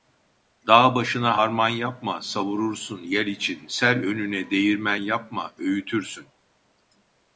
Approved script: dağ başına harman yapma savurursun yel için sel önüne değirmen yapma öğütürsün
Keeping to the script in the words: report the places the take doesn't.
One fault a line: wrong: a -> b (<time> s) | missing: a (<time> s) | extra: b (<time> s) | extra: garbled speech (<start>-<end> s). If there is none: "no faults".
no faults